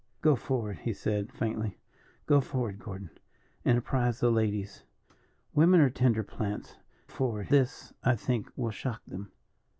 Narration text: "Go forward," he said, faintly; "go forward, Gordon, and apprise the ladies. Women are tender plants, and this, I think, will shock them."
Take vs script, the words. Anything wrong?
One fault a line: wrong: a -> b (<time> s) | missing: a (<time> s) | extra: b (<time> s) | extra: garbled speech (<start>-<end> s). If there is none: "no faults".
wrong: and -> forward (7.1 s)